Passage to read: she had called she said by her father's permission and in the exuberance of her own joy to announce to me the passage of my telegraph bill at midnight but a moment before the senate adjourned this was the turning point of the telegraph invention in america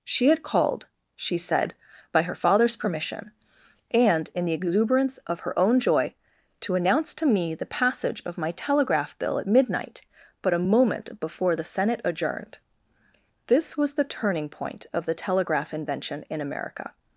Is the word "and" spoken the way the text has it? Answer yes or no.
yes